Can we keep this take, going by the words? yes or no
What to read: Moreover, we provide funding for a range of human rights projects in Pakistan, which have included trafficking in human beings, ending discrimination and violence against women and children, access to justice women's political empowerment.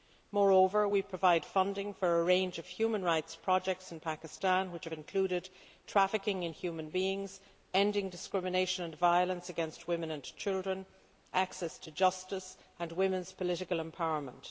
no